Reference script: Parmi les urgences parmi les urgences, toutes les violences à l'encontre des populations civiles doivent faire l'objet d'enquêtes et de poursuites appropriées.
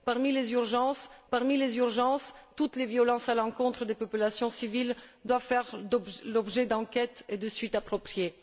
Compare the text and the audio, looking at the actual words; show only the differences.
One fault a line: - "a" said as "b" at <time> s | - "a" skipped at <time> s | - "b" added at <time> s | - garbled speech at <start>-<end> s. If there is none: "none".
none